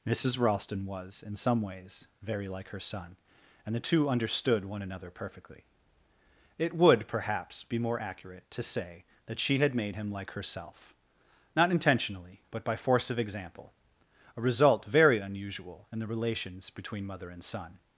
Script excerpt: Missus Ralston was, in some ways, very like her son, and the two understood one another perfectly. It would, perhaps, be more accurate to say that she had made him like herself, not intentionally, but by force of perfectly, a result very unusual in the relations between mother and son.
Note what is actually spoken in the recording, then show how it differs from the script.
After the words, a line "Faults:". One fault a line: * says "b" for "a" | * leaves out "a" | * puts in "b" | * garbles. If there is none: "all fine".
Missus Ralston was, in some ways, very like her son, and the two understood one another perfectly. It would, perhaps, be more accurate to say that she had made him like herself, not intentionally, but by force of example, a result very unusual in the relations between mother and son.
Faults:
* says "example" for "perfectly"